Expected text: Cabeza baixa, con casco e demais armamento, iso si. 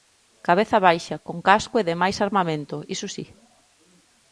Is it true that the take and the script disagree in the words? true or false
false